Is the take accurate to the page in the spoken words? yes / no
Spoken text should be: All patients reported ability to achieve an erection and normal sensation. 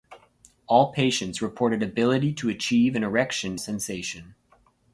no